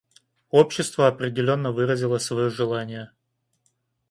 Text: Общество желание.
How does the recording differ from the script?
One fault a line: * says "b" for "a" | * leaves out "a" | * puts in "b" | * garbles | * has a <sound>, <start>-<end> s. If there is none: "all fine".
* puts in "определенно выразило свое"